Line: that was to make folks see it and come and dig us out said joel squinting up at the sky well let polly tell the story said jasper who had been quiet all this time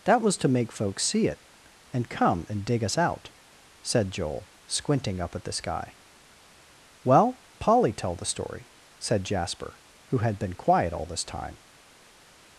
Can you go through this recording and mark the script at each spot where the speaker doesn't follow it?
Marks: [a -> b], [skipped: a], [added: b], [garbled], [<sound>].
that was to make folks see it and come and dig us out said joel squinting up at the sky well [skipped: let] polly tell the story said jasper who had been quiet all this time